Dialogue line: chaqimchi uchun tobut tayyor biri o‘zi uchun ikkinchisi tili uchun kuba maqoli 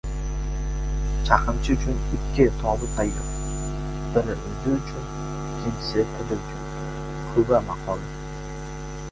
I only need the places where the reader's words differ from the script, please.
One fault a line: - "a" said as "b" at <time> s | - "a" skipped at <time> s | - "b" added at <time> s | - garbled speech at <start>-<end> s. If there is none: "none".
- "ikki" added at 2.2 s